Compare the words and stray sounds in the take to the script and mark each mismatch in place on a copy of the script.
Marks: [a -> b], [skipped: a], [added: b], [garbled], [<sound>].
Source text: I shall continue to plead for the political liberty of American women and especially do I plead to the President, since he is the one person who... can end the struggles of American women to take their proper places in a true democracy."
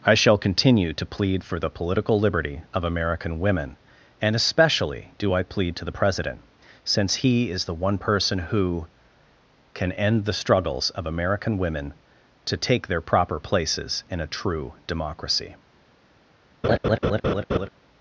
I shall continue to plead for the political liberty of American women and especially do I plead to the President, since he is the one person who... can end the struggles of American women to take their proper places in a true democracy." [laugh]